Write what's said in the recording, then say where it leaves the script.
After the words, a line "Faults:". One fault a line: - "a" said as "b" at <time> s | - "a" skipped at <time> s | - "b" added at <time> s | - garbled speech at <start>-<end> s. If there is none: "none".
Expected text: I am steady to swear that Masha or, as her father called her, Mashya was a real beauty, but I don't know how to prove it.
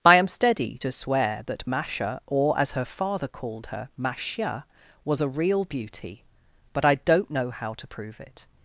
I am steady to swear that Masha or, as her father called her, Mashya was a real beauty, but I don't know how to prove it.
Faults:
none